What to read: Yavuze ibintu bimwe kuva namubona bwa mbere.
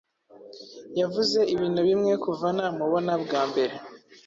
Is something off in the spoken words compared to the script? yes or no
no